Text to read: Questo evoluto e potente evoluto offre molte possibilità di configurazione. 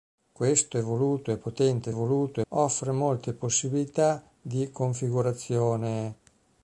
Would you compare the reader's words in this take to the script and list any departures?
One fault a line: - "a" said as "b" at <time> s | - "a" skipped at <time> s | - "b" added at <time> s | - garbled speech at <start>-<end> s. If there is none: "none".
none